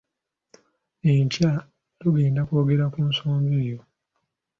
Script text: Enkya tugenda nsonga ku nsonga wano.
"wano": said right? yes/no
no